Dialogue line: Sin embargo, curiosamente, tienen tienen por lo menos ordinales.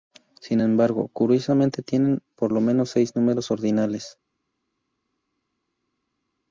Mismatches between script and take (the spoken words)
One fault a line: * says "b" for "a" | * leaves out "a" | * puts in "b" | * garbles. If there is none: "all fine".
* leaves out "tienen"
* puts in "seis números"